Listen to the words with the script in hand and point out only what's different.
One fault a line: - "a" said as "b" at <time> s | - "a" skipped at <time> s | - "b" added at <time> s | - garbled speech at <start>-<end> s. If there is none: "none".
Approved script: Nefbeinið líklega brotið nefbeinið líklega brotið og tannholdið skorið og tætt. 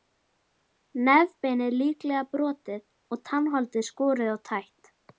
- "nefbeinið líklega brotið" skipped at 2.8 s